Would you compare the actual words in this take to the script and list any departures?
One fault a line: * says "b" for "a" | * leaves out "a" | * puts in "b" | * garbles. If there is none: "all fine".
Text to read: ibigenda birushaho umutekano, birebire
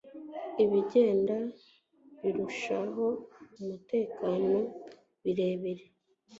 all fine